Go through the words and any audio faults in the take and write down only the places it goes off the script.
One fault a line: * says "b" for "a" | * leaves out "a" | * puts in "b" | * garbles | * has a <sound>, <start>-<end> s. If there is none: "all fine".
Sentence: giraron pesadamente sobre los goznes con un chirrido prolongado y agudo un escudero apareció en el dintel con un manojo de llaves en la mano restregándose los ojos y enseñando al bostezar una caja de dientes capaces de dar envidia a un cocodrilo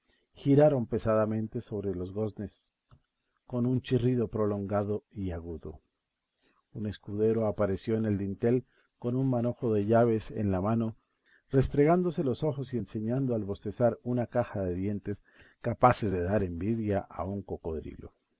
all fine